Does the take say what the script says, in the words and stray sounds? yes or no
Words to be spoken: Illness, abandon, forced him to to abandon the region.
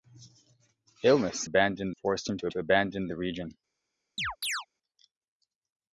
no